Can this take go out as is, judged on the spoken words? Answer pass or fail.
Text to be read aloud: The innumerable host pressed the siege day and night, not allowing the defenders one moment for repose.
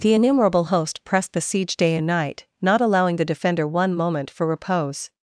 fail